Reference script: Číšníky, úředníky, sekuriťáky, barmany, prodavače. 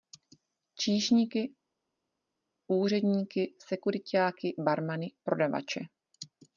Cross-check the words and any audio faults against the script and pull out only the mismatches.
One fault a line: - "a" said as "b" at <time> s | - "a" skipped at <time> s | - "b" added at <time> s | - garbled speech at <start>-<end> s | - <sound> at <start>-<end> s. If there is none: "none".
none